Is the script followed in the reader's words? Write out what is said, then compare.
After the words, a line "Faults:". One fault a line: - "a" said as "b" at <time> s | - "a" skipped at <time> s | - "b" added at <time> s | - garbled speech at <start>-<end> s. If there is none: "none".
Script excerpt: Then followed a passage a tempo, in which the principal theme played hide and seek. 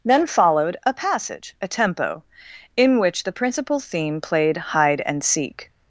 Then followed a passage a tempo, in which the principal theme played hide and seek.
Faults:
none